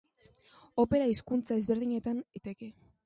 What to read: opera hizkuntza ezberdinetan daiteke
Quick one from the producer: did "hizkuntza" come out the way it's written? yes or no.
yes